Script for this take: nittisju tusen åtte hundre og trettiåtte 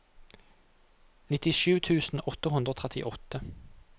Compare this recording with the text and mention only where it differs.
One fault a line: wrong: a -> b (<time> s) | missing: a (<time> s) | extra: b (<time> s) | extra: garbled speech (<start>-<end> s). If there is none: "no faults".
no faults